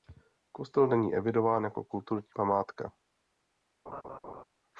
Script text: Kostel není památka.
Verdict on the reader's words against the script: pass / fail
fail